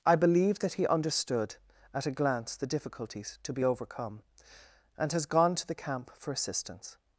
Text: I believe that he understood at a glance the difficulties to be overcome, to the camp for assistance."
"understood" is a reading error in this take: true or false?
false